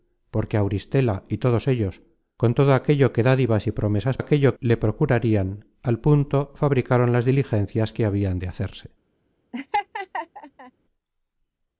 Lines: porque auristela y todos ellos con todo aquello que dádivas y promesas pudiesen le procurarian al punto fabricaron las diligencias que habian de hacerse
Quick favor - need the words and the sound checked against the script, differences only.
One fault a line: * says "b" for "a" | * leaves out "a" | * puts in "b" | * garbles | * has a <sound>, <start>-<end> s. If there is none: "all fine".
* says "aquello" for "pudiesen"
* has a laugh, 9.5-10.7 s